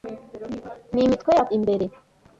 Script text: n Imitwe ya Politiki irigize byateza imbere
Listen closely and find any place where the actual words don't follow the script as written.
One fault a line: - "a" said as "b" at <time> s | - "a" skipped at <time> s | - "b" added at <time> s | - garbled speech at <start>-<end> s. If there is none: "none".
- "Politiki irigize byateza" skipped at 1.4 s